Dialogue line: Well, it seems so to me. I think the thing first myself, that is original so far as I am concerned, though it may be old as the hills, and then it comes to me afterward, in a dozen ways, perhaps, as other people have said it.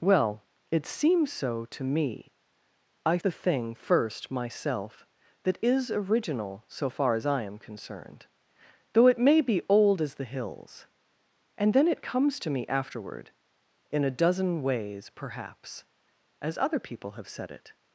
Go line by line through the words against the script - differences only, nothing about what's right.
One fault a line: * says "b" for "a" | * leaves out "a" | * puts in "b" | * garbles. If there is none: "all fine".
* leaves out "think"